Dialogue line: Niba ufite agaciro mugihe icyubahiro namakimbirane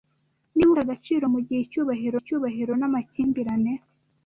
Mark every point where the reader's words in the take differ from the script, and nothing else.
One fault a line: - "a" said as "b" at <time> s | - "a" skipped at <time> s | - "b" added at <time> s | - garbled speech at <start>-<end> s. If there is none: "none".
- "ufite" skipped at 0.7 s
- "icyubahiro" added at 2.2 s